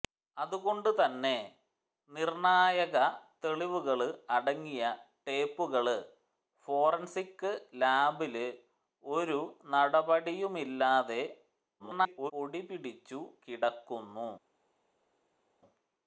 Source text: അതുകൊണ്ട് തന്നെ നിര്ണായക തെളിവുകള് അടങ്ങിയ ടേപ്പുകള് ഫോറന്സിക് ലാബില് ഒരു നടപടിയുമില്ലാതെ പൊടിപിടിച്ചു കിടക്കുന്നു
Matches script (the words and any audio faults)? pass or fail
fail